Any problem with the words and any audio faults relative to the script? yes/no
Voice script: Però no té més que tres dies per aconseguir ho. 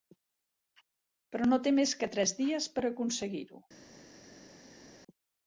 no